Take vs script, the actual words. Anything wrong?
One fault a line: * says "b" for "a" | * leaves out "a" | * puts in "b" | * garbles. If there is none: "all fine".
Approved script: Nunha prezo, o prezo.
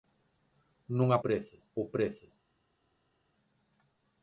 all fine